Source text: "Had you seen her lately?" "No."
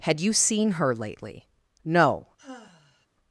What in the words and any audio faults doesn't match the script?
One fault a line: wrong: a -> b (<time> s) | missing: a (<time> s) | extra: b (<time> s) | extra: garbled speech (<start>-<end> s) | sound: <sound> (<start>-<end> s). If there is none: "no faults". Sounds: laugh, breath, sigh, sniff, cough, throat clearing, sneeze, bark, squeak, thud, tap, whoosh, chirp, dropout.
sound: sigh (2.4-3.1 s)